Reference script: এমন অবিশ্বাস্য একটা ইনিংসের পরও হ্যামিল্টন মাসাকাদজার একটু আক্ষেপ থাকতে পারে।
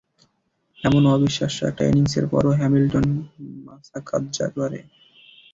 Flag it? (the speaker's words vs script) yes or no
yes